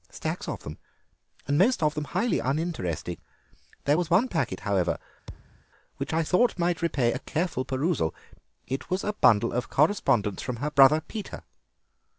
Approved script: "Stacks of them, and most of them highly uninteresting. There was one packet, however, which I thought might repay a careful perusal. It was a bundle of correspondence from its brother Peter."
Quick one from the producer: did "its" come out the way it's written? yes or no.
no